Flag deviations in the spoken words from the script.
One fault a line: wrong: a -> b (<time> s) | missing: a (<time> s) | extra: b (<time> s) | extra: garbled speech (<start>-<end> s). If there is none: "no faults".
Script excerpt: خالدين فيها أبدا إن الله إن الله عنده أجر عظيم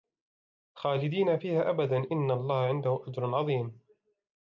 missing: إن الله (2.6 s)